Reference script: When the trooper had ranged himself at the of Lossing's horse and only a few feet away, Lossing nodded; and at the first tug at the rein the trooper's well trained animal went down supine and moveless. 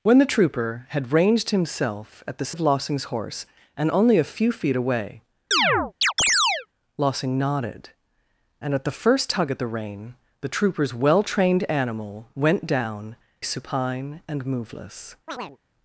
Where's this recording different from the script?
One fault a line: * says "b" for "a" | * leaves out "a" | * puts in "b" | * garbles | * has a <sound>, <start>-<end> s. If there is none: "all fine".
* has a chirp, 5.5-6.7 s
* has a chirp, 15.3-15.6 s